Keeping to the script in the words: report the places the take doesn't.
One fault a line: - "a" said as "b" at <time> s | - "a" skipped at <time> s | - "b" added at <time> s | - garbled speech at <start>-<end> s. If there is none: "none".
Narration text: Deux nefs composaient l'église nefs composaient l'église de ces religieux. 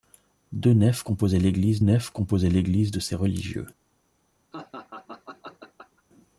none